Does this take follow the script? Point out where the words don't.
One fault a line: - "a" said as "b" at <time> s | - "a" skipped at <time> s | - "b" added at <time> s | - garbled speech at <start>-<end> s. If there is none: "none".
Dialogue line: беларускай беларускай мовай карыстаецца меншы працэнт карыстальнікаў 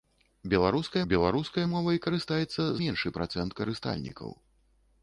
none